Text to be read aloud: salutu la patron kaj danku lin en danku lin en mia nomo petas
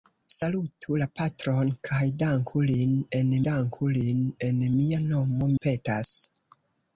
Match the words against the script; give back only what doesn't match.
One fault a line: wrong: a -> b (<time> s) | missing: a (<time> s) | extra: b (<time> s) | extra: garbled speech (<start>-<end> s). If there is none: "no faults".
no faults